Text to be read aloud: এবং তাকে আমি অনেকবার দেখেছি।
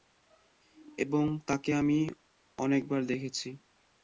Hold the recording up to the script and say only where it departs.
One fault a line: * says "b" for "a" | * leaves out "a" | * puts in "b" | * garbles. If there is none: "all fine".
all fine